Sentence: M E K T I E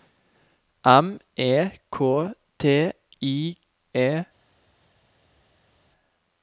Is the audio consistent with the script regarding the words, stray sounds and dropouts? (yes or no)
yes